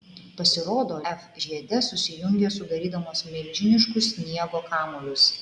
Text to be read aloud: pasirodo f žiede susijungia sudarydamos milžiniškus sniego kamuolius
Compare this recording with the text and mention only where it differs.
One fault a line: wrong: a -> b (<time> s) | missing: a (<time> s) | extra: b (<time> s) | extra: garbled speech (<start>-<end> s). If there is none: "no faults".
no faults